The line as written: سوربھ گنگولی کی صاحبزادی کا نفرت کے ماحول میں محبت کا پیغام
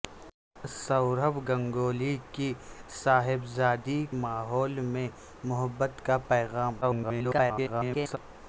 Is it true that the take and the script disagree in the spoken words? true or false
true